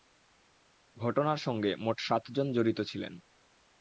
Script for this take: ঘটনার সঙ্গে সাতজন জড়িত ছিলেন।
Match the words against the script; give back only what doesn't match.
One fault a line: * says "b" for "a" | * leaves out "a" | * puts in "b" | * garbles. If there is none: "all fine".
* puts in "মোট"